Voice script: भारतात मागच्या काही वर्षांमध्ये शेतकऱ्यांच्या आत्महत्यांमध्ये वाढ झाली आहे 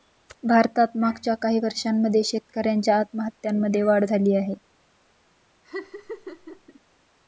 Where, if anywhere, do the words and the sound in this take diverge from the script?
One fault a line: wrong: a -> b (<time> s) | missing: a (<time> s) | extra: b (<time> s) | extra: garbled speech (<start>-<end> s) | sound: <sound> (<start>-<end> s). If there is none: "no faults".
sound: laugh (5.6-6.8 s)